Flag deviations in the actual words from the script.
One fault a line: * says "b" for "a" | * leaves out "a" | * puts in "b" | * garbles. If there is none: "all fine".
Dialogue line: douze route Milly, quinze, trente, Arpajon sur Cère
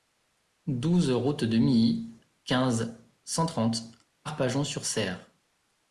* puts in "de"
* puts in "cent"